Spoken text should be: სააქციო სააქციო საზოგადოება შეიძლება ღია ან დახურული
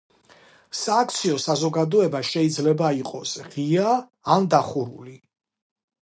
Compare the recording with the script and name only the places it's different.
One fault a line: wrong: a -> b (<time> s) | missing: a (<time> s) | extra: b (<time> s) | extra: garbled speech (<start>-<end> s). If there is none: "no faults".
missing: სააქციო (1.4 s)
extra: იყოს (3.0 s)